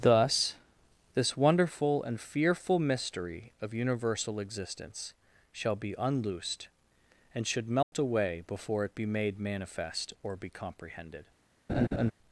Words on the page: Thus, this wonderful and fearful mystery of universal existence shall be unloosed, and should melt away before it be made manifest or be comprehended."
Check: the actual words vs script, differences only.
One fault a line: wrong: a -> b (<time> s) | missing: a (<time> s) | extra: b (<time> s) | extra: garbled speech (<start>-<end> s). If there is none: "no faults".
no faults